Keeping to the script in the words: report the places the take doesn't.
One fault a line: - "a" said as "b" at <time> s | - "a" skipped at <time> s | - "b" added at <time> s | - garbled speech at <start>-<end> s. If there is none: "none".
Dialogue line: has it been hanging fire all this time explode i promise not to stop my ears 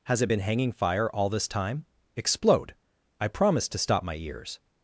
- "not" skipped at 3.7 s